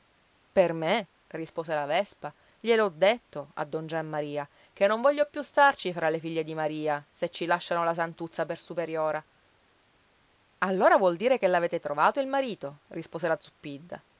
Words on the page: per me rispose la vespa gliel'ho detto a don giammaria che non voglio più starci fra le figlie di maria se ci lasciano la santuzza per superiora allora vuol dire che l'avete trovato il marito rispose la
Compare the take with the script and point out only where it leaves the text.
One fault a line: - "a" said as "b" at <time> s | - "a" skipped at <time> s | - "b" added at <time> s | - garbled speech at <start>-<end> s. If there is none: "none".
none